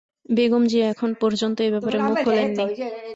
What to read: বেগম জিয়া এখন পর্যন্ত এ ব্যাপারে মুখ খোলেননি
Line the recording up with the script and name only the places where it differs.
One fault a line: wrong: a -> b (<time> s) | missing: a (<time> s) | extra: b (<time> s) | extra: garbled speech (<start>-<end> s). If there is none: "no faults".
no faults